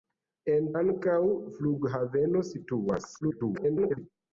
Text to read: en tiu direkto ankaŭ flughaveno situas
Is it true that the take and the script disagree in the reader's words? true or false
true